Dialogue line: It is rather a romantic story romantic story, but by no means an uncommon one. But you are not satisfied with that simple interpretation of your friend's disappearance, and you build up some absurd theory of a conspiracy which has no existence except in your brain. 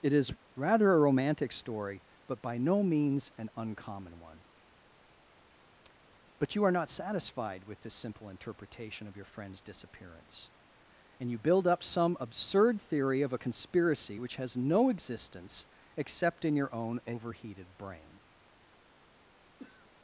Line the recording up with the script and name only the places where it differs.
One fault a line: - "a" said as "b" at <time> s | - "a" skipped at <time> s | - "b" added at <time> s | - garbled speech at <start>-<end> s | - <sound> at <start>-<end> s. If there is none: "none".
- "romantic story" skipped at 2.0 s
- "that" said as "this" at 7.8 s
- "own overheated" added at 16.7 s
- throat clearing at 19.6-19.9 s